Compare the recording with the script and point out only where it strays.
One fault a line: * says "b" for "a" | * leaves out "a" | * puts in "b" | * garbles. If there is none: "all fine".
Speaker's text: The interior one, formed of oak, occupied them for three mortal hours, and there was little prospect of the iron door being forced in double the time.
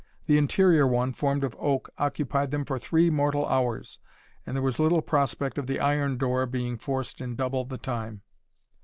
all fine